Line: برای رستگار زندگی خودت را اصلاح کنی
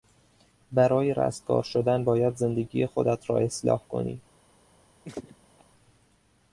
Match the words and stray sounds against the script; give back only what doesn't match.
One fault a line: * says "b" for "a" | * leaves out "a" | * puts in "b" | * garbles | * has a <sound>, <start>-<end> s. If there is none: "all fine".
* puts in "شدن باید"
* has a laugh, 5.0-5.6 s